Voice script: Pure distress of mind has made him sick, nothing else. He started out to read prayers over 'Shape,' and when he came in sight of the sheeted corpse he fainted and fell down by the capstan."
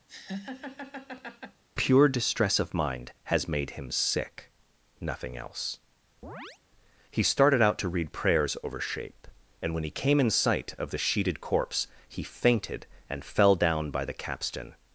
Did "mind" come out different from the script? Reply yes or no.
no